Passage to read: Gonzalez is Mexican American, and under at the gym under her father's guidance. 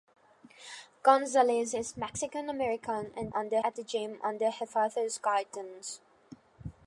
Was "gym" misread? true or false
false